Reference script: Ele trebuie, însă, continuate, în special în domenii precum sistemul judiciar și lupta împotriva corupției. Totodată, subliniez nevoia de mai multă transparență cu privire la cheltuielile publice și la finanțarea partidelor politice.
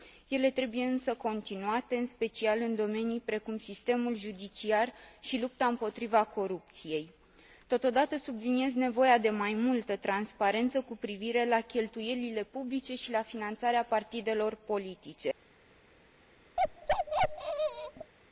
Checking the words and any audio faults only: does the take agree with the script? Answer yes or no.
no